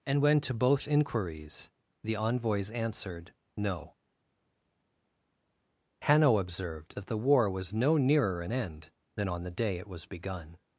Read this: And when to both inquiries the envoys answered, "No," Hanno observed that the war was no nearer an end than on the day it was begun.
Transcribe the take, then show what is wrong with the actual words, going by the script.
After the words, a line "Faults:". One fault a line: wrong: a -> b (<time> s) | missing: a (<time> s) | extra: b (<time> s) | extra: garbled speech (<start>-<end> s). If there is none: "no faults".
And when to both inquiries the envoys answered, "No," Hanno observed that the war was no nearer an end than on the day it was begun.
Faults:
no faults